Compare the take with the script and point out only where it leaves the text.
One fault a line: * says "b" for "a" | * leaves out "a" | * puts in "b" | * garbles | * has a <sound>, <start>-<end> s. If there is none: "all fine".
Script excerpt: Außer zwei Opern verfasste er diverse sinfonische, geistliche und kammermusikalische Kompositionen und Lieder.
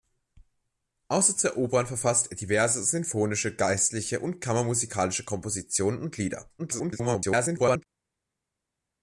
* garbles